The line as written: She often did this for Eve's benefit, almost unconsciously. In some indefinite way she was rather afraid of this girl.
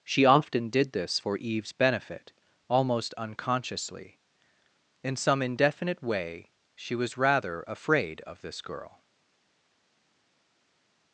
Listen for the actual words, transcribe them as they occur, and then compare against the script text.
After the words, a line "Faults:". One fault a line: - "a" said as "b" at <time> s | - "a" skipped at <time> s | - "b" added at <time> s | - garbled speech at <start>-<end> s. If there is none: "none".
She often did this for Eve's benefit, almost unconsciously. In some indefinite way she was rather afraid of this girl.
Faults:
none